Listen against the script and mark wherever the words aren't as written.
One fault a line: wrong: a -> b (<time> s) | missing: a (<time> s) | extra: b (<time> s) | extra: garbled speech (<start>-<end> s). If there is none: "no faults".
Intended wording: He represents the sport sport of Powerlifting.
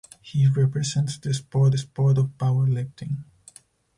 no faults